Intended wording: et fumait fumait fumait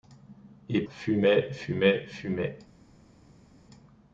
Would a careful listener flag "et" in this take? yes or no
no